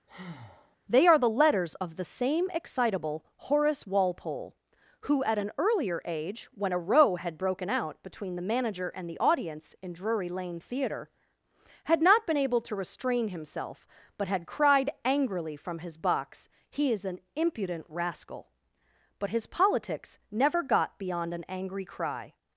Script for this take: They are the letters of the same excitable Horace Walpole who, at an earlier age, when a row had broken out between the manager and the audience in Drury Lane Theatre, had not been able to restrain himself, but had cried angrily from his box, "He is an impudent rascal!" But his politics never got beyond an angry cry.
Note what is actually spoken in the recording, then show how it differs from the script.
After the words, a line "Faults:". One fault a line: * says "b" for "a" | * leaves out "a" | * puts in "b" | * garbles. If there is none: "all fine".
They are the letters of the same excitable Horace Walpole who, at an earlier age, when a row had broken out between the manager and the audience in Drury Lane Theatre, had not been able to restrain himself, but had cried angrily from his box, "He is an impudent rascal!" But his politics never got beyond an angry cry.
Faults:
all fine